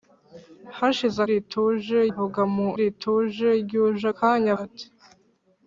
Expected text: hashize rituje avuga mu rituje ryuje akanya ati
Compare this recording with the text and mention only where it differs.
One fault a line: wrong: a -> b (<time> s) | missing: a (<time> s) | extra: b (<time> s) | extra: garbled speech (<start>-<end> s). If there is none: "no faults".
no faults